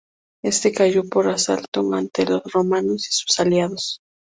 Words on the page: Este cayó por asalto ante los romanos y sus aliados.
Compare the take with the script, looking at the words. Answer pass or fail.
pass